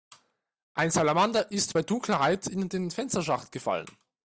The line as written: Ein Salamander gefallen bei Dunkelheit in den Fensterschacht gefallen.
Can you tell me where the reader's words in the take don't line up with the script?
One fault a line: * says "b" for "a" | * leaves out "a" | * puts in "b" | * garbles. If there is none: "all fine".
* says "ist" for "gefallen"